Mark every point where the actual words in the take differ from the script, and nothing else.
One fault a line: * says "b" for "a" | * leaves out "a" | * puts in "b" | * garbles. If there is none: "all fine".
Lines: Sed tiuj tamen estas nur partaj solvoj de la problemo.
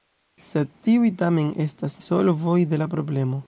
* leaves out "nur partaj"